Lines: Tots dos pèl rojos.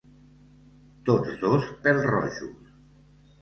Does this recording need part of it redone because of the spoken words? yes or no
no